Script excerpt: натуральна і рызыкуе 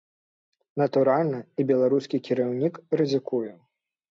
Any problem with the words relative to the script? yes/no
yes